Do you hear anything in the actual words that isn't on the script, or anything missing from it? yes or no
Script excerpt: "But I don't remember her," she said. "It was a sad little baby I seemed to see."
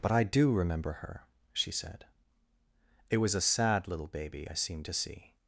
yes